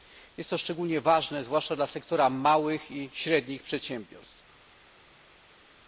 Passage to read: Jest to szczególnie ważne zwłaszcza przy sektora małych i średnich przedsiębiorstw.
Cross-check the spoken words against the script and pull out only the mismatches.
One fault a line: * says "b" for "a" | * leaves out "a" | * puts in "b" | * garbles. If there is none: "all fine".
* says "dla" for "przy"